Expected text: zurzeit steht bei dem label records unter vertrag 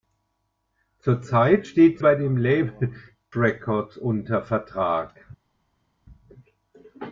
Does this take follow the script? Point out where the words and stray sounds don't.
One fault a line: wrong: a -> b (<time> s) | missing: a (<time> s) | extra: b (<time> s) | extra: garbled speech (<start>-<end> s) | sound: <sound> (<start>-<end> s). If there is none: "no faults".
no faults